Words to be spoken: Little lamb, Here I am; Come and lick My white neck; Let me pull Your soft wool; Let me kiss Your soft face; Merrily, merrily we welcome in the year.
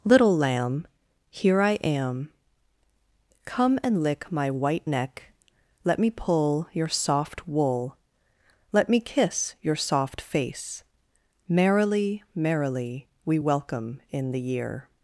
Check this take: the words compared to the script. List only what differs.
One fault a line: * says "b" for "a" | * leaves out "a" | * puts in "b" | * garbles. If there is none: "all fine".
all fine